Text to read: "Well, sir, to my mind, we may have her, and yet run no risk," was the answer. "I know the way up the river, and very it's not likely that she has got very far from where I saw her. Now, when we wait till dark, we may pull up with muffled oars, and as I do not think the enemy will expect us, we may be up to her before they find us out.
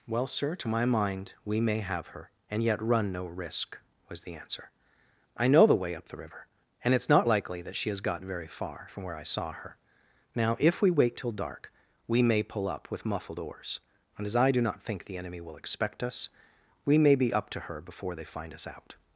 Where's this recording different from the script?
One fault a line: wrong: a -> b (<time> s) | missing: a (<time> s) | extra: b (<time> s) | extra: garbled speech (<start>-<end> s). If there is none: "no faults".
missing: very (7.0 s)
wrong: when -> if (10.6 s)